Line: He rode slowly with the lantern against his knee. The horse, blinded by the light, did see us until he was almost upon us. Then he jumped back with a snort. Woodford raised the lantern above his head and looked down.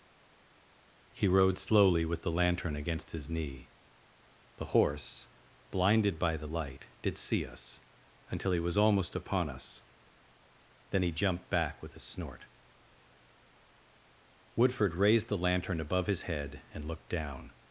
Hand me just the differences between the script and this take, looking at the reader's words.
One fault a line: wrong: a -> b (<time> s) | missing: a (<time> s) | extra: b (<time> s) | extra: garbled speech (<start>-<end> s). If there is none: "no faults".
no faults